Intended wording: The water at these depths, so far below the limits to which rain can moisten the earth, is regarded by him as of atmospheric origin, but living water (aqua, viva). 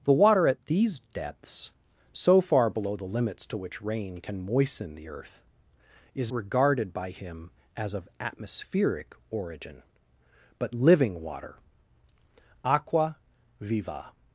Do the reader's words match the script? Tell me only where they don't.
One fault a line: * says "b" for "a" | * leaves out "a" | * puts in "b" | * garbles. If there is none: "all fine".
all fine